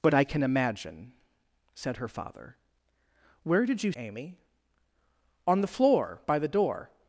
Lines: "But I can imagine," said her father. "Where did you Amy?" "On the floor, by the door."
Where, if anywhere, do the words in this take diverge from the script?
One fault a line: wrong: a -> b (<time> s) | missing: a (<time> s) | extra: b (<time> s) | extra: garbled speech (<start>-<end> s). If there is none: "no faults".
no faults